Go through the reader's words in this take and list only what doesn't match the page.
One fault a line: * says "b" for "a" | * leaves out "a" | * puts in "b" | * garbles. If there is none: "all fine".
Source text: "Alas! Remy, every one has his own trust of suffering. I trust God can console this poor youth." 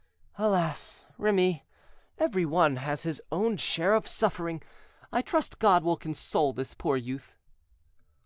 * says "share" for "trust"
* says "will" for "can"